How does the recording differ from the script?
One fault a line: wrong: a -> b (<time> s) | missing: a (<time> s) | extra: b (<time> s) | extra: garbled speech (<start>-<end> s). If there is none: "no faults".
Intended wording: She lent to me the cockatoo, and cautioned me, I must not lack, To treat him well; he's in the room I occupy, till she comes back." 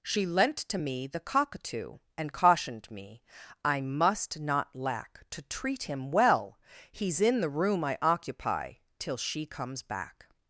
no faults